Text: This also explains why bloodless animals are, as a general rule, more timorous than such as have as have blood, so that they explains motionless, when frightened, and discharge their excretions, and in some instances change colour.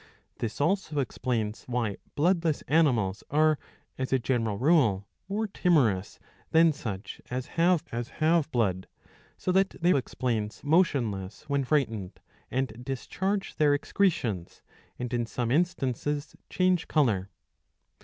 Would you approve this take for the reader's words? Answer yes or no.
yes